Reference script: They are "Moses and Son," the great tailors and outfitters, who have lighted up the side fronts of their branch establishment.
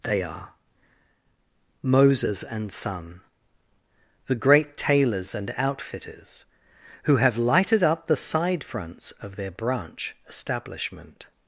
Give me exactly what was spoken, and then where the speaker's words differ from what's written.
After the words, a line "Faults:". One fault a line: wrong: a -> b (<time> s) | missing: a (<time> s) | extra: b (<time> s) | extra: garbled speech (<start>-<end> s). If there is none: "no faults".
They are "Moses and Son," the great tailors and outfitters, who have lighted up the side fronts of their branch establishment.
Faults:
no faults